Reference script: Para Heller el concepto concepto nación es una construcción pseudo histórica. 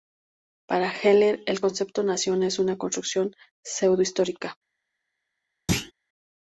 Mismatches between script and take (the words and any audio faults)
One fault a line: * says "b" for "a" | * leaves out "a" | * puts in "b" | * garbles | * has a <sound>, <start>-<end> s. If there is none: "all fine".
* leaves out "concepto"
* has a thud, 5.7-5.9 s